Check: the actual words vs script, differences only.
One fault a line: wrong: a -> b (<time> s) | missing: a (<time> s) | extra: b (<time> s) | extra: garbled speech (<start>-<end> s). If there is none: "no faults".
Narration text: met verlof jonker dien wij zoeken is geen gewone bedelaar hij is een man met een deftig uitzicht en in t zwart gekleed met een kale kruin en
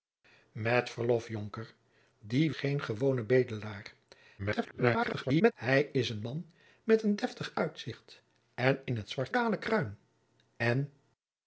missing: wij zoeken is (2.5 s)
extra: garbled speech (4.4-5.5 s)
missing: gekleed met een (9.3 s)